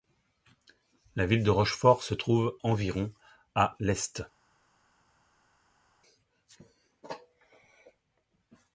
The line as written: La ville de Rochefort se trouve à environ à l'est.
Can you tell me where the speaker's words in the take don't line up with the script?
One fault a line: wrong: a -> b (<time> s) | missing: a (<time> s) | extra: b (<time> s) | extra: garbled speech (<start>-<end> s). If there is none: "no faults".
missing: à (2.6 s)